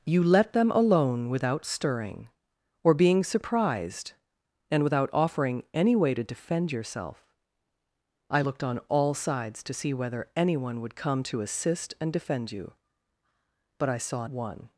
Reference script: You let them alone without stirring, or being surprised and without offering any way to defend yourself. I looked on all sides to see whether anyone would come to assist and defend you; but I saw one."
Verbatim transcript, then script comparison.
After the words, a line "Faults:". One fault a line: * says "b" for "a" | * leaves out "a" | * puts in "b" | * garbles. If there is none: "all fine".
You let them alone without stirring, or being surprised and without offering any way to defend yourself. I looked on all sides to see whether anyone would come to assist and defend you; but I saw one."
Faults:
all fine